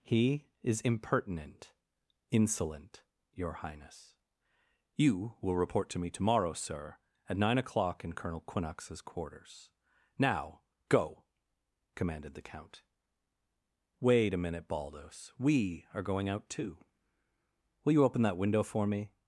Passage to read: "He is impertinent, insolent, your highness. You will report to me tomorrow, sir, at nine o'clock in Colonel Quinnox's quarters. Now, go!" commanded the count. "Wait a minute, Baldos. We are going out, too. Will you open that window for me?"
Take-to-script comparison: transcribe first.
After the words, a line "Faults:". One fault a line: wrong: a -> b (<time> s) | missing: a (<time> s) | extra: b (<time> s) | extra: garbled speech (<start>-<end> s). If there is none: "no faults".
"He is impertinent, insolent, your highness. You will report to me tomorrow, sir, at nine o'clock in Colonel Quinnox's quarters. Now, go!" commanded the count. "Wait a minute, Baldos. We are going out, too. Will you open that window for me?"
Faults:
no faults